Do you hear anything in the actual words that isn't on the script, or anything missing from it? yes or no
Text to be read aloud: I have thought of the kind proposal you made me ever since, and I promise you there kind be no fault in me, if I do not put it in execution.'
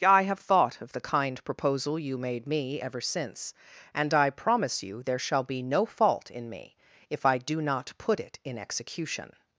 yes